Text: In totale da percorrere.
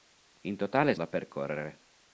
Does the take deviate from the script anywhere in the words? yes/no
no